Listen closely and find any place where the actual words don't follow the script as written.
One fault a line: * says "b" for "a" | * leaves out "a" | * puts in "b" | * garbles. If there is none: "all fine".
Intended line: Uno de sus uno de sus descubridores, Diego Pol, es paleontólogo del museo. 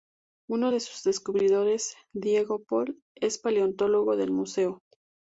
* leaves out "uno de sus"